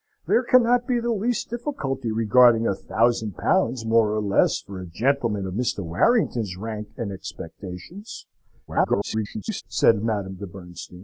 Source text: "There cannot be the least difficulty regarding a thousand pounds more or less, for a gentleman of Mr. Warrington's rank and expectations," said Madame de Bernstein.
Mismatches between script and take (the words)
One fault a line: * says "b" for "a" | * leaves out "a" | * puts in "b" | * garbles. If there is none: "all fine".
* garbles